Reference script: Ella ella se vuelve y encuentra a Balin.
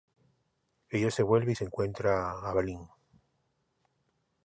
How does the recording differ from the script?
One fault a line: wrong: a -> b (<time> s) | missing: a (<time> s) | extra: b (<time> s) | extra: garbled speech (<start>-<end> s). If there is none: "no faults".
missing: ella (1.1 s)
extra: se (1.5 s)